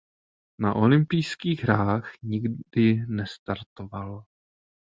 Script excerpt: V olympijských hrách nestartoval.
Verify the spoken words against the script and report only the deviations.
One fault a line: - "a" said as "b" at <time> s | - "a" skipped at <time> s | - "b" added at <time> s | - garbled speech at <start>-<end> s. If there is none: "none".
- "V" said as "Na" at 0.6 s
- "nikdy" added at 2.2 s